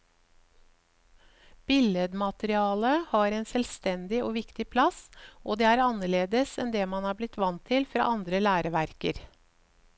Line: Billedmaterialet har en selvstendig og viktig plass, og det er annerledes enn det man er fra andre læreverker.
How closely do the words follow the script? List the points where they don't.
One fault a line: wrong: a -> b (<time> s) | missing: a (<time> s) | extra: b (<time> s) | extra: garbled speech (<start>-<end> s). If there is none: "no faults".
extra: blitt vant til (7.2 s)